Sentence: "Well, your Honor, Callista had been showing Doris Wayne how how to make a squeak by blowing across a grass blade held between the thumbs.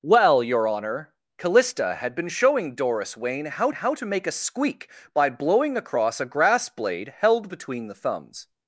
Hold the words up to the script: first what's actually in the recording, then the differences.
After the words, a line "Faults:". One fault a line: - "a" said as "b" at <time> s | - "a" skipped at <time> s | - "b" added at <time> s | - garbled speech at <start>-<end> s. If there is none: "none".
"Well, your Honor, Callista had been showing Doris Wayne how how to make a squeak by blowing across a grass blade held between the thumbs.
Faults:
none